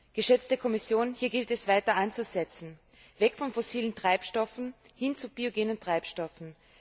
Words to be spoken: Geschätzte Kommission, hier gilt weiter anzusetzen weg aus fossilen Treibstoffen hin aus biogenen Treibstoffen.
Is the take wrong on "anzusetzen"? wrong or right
right